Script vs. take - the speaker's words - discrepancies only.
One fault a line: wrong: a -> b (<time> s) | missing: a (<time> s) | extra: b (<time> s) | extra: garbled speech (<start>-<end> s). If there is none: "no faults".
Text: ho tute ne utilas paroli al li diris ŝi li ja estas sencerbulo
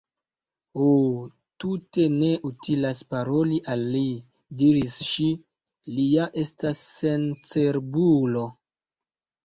no faults